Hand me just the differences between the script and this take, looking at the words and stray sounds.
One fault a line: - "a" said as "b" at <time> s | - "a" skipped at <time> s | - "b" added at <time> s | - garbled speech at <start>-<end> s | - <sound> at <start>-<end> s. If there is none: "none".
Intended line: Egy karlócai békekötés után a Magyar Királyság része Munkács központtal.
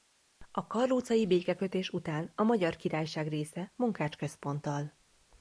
- "Egy" said as "A" at 0.5 s